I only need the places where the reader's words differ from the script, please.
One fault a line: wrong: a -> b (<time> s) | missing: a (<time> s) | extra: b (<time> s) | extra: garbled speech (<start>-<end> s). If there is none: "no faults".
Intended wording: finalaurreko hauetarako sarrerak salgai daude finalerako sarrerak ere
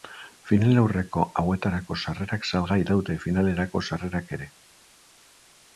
no faults